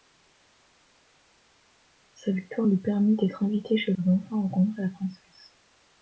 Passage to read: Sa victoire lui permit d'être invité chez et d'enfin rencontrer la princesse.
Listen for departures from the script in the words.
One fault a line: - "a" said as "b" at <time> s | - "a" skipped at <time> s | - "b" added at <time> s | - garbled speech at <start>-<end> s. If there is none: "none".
none